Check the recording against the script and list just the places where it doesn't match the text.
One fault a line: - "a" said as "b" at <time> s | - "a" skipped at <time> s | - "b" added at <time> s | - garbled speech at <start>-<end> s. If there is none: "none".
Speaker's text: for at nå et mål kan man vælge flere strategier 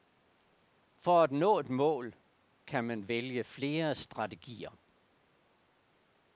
none